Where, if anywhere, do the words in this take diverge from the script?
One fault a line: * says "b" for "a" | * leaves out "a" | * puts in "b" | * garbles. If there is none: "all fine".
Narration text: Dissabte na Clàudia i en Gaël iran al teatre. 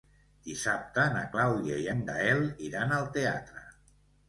all fine